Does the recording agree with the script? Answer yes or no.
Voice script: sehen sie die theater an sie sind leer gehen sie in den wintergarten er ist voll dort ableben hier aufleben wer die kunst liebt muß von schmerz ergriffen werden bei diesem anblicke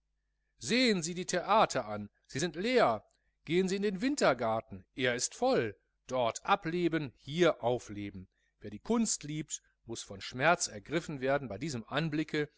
yes